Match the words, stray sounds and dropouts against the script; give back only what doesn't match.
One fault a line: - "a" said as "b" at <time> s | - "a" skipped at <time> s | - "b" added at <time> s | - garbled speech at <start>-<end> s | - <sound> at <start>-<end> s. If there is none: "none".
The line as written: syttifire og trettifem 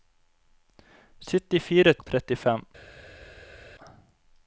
none